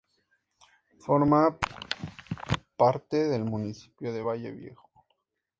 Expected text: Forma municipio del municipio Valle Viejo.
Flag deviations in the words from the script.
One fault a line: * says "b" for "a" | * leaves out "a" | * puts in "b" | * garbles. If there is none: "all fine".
* says "parte" for "municipio"
* puts in "de"